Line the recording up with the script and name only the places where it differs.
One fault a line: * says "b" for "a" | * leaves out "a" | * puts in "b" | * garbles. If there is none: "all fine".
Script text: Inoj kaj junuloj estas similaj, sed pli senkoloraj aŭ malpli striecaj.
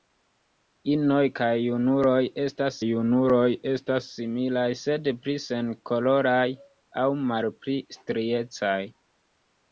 * puts in "junuloj estas"